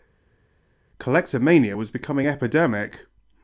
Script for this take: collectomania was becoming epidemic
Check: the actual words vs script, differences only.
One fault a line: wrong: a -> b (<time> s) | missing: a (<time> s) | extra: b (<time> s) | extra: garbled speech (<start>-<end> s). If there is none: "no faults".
no faults